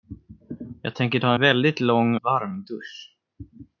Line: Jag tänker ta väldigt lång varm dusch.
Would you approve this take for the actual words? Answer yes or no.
yes